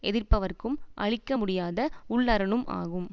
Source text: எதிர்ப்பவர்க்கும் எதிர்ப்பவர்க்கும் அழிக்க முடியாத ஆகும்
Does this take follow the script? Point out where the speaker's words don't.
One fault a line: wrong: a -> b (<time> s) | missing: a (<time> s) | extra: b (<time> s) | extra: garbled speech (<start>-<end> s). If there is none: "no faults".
missing: எதிர்ப்பவர்க்கும் (0.8 s)
extra: உள்ளரணும் (2.1 s)